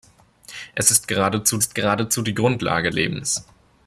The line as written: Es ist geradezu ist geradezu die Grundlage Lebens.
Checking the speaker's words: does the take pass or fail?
pass